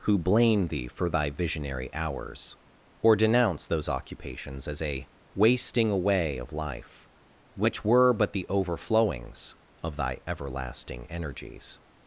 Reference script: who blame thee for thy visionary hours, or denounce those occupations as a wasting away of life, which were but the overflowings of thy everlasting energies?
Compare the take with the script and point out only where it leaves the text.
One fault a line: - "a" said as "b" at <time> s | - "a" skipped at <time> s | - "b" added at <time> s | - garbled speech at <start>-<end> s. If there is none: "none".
none